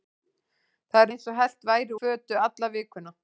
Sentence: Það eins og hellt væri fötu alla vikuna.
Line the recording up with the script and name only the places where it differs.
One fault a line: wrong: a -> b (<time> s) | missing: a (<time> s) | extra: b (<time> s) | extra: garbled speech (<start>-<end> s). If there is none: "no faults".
no faults